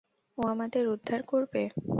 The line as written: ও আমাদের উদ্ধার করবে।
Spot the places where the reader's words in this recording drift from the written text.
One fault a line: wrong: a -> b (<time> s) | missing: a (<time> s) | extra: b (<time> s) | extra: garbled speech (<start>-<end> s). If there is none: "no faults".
no faults